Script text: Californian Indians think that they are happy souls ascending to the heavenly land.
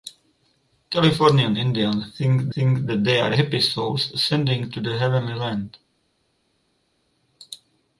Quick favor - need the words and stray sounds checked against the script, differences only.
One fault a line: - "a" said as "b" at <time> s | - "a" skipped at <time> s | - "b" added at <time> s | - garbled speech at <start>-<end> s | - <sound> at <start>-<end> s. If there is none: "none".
- "think" added at 2.5 s